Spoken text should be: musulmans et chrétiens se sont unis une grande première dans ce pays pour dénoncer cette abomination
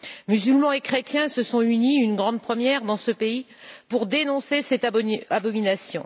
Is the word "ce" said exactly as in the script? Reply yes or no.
yes